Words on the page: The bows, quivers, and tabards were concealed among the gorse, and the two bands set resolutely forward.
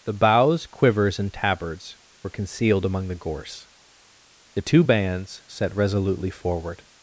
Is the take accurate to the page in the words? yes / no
no